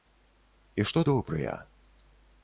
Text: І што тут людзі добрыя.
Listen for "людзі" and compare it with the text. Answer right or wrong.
wrong